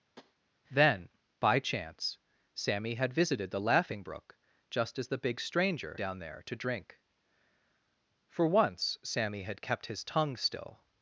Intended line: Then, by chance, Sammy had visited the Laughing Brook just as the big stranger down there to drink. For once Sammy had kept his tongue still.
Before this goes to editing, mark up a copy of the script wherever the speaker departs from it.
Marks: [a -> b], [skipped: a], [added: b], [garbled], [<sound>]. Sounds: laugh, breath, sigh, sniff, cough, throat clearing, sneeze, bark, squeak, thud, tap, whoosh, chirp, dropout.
[tap] Then, by chance, Sammy had visited the Laughing Brook just as the big stranger down there to drink. For once Sammy had kept his tongue still.